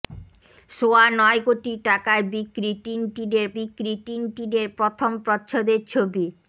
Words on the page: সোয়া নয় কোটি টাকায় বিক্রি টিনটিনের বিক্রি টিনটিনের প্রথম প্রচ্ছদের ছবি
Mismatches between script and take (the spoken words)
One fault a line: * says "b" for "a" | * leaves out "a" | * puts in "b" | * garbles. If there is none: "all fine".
all fine